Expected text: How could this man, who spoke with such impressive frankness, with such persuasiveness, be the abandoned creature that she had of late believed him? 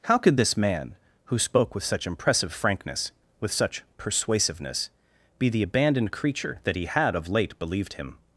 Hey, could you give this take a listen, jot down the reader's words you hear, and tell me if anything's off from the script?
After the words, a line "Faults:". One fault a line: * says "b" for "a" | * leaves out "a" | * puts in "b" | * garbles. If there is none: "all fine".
How could this man, who spoke with such impressive frankness, with such persuasiveness, be the abandoned creature that he had of late believed him?
Faults:
* says "he" for "she"